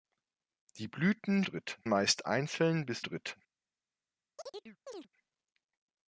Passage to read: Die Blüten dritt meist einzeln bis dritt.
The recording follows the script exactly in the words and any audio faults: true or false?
false